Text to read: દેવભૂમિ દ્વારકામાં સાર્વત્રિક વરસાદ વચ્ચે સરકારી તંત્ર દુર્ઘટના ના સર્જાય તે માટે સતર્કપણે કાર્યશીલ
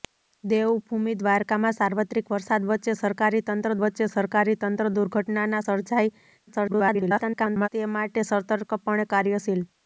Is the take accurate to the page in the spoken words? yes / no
no